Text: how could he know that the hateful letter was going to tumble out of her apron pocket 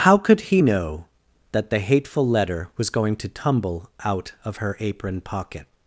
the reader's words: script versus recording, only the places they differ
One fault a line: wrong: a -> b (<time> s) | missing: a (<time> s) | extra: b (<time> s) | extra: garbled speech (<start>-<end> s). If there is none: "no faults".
no faults